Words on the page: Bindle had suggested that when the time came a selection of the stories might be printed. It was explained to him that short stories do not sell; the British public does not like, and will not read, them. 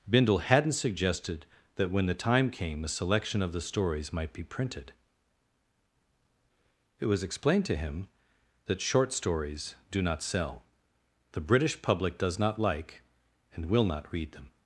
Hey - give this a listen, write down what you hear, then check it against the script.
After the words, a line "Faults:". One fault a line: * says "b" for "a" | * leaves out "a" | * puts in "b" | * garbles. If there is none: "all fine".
Bindle hadn't suggested that when the time came a selection of the stories might be printed. It was explained to him that short stories do not sell; the British public does not like, and will not read, them.
Faults:
* says "hadn't" for "had"